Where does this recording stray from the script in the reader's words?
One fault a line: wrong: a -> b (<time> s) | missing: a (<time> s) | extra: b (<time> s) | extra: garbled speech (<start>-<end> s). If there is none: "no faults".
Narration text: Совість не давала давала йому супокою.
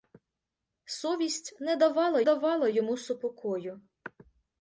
no faults